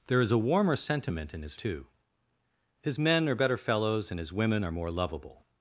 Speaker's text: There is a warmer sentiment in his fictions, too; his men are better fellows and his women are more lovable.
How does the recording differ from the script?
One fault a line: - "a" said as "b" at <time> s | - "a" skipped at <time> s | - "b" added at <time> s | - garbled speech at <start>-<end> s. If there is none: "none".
- "fictions" skipped at 1.6 s